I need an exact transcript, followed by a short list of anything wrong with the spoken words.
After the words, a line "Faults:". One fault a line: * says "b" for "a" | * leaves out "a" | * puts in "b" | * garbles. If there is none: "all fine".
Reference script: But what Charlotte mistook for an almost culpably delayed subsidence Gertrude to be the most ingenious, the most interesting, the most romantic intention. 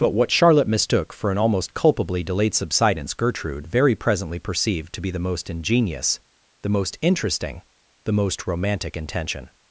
But what Charlotte mistook for an almost culpably delayed subsidence Gertrude very presently perceived to be the most ingenious, the most interesting, the most romantic intention.
Faults:
* puts in "very presently perceived"